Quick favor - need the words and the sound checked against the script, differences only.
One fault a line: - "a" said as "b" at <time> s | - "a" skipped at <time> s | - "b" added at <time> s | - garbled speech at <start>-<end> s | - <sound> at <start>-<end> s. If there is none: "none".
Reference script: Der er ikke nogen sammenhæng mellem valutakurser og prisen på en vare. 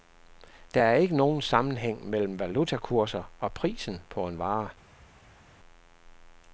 none